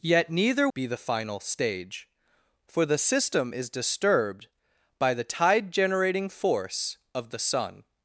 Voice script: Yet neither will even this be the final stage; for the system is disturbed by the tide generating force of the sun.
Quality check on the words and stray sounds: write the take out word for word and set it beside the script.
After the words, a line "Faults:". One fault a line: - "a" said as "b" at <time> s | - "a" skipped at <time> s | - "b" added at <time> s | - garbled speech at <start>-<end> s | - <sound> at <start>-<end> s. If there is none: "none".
Yet neither be the final stage; for the system is disturbed by the tide generating force of the sun.
Faults:
- "will even this" skipped at 0.7 s